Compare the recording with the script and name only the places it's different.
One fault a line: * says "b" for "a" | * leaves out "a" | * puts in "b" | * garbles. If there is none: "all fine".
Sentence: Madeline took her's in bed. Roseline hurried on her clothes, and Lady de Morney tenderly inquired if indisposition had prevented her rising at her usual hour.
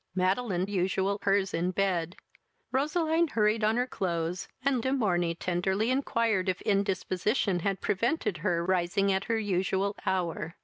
* says "usual" for "took"
* leaves out "Lady"